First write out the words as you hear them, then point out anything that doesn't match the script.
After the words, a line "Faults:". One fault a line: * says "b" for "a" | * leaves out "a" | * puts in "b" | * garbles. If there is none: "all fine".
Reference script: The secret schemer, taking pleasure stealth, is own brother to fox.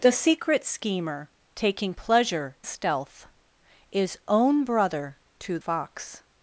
The secret schemer, taking pleasure stealth, is own brother to fox.
Faults:
all fine